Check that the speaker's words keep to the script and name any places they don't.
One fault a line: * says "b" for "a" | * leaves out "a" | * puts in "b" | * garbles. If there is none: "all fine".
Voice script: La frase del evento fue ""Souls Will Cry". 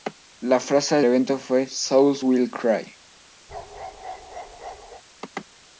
* leaves out "del"